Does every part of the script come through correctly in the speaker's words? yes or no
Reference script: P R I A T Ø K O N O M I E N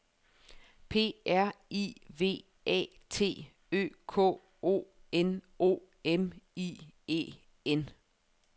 no